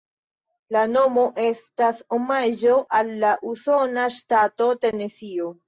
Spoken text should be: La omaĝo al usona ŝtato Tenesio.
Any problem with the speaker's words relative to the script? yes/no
yes